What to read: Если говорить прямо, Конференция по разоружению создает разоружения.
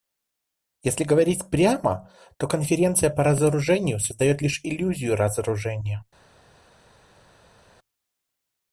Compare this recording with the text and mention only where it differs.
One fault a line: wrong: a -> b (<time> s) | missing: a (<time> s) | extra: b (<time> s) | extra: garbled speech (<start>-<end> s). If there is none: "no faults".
extra: то (2.4 s)
extra: лишь иллюзию (4.4 s)